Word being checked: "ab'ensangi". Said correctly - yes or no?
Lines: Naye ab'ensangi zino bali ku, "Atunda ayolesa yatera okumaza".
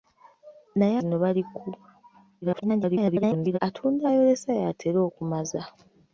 no